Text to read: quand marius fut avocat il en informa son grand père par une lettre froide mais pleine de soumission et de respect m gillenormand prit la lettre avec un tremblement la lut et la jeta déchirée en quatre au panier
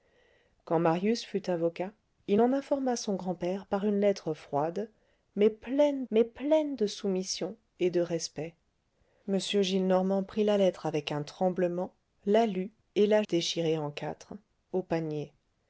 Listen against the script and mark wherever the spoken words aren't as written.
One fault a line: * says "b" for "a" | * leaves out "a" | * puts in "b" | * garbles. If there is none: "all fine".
* puts in "mais pleine"
* leaves out "jeta"